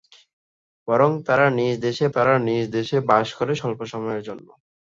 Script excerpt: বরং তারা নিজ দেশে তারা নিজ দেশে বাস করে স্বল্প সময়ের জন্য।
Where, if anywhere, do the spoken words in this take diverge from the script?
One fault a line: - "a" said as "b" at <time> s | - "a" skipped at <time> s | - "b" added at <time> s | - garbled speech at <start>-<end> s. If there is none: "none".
none